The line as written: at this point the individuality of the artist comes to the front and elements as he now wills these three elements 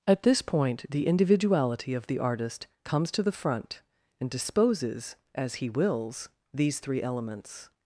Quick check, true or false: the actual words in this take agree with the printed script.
false